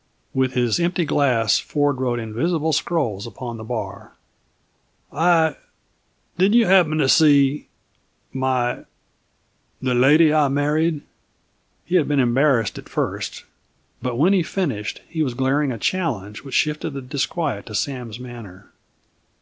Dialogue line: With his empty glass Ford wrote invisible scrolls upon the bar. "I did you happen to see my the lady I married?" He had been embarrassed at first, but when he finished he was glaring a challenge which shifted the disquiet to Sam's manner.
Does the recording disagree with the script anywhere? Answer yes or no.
no